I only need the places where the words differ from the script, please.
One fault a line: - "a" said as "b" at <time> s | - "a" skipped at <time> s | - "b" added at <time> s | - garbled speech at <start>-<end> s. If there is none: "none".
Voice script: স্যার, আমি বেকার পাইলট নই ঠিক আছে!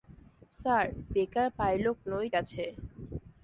- "আমি" skipped at 0.8 s
- "ঠিক" skipped at 2.3 s